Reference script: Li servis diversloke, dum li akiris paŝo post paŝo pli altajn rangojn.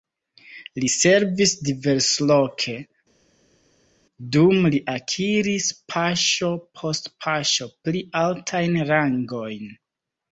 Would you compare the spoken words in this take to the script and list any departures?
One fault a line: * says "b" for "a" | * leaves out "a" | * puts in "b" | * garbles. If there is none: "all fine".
all fine